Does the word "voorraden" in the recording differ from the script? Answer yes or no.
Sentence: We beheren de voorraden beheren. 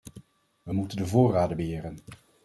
no